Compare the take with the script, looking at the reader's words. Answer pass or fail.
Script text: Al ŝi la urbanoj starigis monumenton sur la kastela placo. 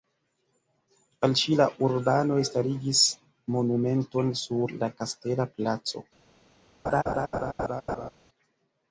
pass